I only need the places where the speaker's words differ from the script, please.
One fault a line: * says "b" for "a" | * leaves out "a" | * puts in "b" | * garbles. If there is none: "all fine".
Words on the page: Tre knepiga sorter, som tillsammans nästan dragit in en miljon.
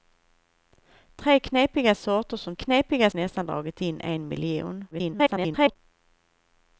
* says "knepiga" for "tillsammans"
* garbles